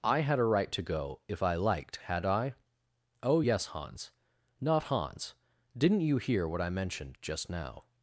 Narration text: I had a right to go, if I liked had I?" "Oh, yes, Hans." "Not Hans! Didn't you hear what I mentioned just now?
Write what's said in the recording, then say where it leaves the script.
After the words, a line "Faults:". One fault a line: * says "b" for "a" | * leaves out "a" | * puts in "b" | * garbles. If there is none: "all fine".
I had a right to go, if I liked had I?" "Oh, yes, Hans." "Not Hans! Didn't you hear what I mentioned just now?
Faults:
all fine